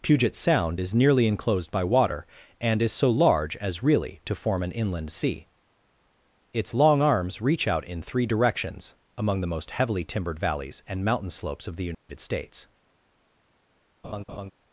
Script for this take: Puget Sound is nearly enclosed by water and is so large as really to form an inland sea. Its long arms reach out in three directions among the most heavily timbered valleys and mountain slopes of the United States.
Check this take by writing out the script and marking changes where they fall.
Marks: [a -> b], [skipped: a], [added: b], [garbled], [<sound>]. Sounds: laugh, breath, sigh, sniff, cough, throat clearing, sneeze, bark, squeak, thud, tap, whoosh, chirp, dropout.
Puget Sound is nearly enclosed by water and is so large as really to form an inland sea. Its long arms reach out in three directions among the most heavily timbered valleys and mountain slopes of the United [dropout] States. [laugh]